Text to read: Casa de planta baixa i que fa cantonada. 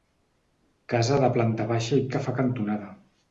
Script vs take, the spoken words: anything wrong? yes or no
no